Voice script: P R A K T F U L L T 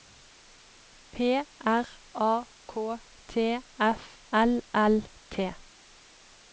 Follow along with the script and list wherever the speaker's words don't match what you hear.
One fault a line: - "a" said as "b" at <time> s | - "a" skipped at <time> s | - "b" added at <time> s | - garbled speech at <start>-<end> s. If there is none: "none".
- "U" skipped at 4.2 s